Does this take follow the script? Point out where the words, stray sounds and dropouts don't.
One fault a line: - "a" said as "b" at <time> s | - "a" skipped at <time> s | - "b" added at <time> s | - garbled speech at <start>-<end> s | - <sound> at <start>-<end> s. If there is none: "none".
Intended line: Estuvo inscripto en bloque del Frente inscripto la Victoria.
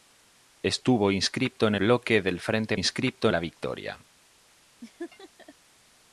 - laugh at 4.8-5.5 s